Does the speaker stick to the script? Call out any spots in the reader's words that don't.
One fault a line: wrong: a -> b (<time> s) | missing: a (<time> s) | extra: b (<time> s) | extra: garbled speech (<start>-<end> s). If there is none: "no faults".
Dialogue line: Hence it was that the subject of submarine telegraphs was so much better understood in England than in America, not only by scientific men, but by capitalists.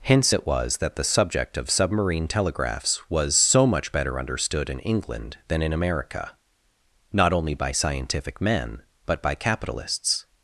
no faults